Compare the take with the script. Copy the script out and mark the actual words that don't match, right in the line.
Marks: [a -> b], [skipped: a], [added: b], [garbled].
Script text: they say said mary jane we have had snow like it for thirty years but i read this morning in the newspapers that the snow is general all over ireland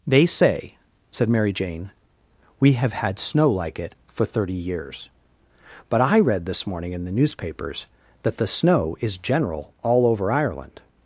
they say said mary jane we have had snow like it for thirty years but i read this morning in the newspapers that the snow is general all over ireland